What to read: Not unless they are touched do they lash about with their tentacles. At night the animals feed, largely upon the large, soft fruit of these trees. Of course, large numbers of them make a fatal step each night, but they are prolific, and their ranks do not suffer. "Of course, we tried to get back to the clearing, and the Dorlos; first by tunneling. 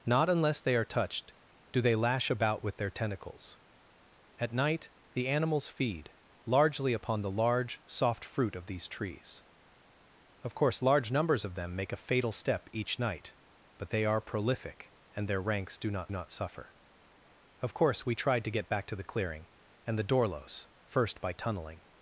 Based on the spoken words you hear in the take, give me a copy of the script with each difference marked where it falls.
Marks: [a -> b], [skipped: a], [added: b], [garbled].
Not unless they are touched do they lash about with their tentacles. At night the animals feed, largely upon the large, soft fruit of these trees. Of course, large numbers of them make a fatal step each night, but they are prolific, and their ranks do not [added: not] suffer. "Of course, we tried to get back to the clearing, and the Dorlos; first by tunneling.